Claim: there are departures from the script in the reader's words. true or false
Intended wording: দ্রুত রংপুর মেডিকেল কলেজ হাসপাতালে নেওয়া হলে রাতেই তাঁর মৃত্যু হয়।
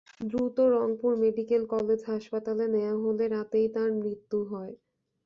false